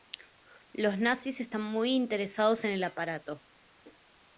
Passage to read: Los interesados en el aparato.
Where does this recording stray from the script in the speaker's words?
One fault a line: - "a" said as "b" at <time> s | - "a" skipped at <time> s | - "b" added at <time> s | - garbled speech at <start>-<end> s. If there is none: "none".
- "nazis están muy" added at 1.0 s